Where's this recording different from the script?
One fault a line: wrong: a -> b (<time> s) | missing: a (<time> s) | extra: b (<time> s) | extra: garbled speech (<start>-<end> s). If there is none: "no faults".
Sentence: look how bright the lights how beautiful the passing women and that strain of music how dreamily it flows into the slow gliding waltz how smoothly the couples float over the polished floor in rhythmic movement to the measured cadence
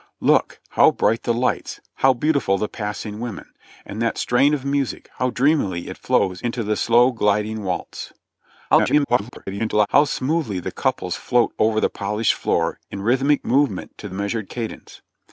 extra: garbled speech (8.7-9.9 s)
missing: the (14.1 s)